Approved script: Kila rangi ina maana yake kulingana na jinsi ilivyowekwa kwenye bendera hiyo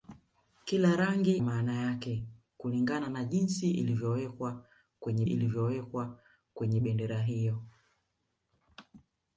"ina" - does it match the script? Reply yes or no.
no